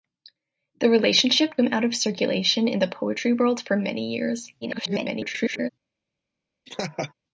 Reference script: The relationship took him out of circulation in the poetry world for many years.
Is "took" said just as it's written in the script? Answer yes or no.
no